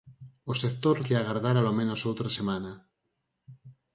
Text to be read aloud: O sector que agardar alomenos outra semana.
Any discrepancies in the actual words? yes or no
no